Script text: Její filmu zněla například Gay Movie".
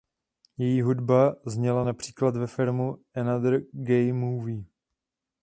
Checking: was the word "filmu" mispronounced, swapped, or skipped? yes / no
yes